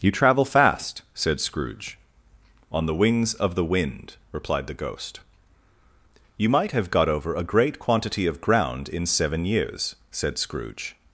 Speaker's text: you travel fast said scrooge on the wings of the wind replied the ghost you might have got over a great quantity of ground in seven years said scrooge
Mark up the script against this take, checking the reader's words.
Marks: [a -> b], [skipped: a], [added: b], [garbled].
you travel fast said scrooge on the wings of the wind replied the ghost you might have got over a great quantity of ground in seven years said scrooge